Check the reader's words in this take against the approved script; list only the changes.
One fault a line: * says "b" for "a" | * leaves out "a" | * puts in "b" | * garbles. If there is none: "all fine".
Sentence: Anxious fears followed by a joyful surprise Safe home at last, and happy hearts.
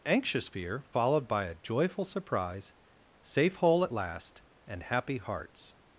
* says "fear" for "fears"
* says "hole" for "home"